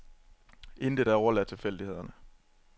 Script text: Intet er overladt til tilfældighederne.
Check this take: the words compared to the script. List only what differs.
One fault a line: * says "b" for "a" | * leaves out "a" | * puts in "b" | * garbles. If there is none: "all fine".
* leaves out "til"